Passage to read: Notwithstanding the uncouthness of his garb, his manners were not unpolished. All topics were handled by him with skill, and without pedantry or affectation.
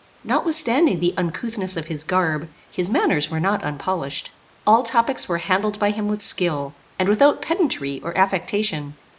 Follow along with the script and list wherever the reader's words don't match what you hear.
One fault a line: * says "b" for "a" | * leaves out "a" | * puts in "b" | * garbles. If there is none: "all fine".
all fine